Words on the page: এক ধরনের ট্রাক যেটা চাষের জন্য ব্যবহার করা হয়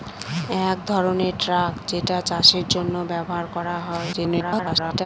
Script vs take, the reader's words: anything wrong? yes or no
yes